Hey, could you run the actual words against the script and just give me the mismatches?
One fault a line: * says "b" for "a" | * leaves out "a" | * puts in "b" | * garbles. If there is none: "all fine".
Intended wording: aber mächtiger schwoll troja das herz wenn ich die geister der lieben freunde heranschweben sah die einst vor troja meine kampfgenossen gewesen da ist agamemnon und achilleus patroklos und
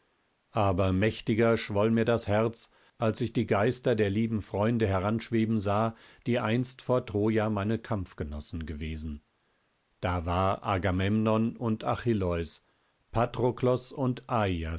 * says "mir" for "troja"
* says "als" for "wenn"
* says "war" for "ist"